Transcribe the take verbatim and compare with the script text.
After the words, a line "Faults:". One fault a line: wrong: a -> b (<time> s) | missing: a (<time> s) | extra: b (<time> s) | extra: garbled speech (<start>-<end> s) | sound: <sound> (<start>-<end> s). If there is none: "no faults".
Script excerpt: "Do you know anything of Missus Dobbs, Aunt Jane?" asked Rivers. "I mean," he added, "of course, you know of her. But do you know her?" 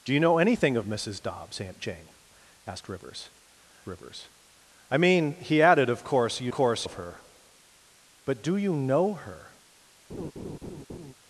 "Do you know anything of Missus Dobbs, Aunt Jane?" asked Rivers Rivers. "I mean," he added, "of course, you course of her. But do you know her?"
Faults:
extra: Rivers (3.9 s)
wrong: know -> course (6.5 s)
sound: laugh (10.1-11.1 s)